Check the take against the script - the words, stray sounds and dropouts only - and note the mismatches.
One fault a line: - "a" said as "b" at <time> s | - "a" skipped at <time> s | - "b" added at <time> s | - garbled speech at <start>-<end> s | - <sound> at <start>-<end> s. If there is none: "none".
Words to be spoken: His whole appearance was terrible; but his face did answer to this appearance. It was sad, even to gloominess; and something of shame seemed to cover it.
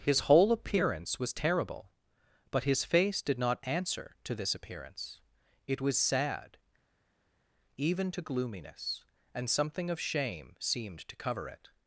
- "not" added at 3.4 s